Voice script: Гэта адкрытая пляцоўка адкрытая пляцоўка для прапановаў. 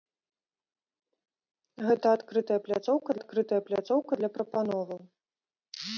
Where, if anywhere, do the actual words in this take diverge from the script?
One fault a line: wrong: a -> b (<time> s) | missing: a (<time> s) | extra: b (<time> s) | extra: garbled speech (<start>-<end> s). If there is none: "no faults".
no faults